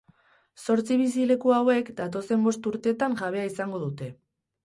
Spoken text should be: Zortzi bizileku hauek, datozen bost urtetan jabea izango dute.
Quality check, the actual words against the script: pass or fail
pass